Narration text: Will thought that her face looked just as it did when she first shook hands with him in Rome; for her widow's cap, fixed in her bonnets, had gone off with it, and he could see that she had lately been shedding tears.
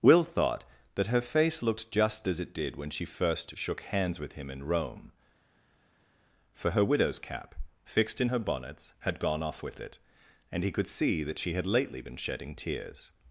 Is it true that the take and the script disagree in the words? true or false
false